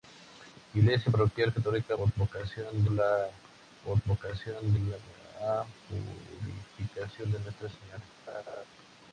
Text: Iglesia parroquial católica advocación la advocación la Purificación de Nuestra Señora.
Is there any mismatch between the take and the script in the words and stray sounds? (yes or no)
yes